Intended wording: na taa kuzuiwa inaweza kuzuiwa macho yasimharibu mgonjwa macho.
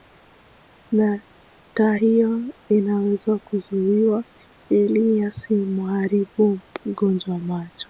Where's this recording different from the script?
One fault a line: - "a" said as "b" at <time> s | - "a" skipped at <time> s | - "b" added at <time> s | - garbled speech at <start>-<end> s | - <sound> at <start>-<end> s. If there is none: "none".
- "kuzuiwa" said as "hiyo" at 1.9 s
- "macho" said as "ili" at 4.7 s